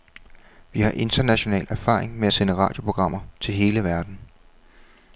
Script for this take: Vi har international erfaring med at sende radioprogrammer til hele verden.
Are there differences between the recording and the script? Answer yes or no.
no